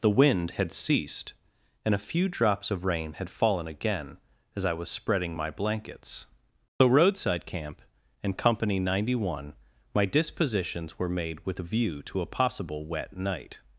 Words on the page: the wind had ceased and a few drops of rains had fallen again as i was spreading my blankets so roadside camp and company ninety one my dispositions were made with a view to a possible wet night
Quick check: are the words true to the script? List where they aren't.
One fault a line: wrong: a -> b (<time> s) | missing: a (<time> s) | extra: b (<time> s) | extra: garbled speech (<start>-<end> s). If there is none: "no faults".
wrong: rains -> rain (2.9 s)